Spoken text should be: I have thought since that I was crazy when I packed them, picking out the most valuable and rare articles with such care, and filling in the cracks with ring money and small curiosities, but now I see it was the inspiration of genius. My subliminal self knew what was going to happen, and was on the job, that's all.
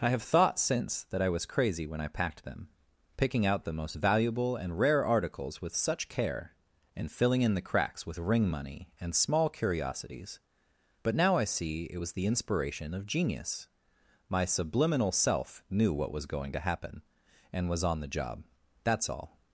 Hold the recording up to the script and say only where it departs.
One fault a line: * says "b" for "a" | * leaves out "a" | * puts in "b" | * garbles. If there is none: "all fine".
all fine